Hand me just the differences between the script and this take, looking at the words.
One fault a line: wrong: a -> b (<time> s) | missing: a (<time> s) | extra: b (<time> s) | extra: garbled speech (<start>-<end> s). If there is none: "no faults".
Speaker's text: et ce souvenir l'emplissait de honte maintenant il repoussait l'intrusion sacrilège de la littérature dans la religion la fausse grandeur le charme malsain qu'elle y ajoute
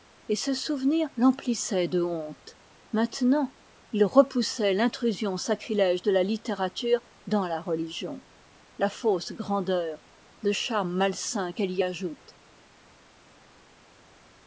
no faults